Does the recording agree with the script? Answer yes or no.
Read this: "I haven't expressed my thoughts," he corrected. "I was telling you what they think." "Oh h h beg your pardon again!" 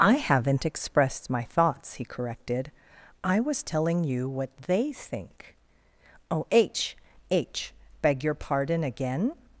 yes